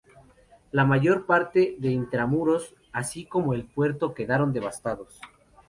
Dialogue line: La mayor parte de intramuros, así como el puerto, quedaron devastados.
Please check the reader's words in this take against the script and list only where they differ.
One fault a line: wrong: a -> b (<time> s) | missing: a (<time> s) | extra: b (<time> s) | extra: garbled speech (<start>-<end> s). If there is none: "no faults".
no faults